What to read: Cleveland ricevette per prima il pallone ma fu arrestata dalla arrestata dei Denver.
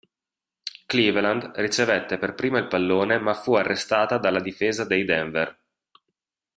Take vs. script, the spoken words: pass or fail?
fail